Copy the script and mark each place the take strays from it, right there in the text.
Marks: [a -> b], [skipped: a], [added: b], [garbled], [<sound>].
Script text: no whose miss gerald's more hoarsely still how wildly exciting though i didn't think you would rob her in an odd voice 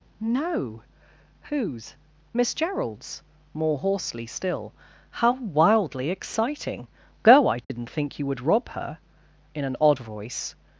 no whose miss gerald's more hoarsely still how wildly exciting [though -> go] i didn't [dropout] think you would rob her in an odd voice